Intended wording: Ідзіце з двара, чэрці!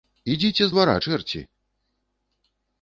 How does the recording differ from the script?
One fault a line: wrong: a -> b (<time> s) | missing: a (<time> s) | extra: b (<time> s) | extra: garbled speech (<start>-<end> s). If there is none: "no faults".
no faults